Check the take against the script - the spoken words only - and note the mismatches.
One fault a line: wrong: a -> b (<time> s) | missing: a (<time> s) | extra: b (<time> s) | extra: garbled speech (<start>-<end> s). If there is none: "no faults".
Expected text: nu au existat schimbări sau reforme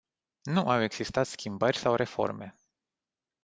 no faults